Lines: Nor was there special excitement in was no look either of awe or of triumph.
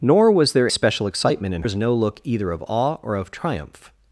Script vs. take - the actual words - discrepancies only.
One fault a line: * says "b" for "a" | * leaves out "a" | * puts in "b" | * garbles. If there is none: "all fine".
all fine